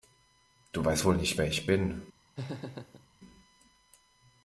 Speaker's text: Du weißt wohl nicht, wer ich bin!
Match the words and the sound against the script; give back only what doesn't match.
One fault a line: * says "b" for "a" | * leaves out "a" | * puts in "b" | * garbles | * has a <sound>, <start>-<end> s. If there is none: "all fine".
* has a laugh, 2.4-3.1 s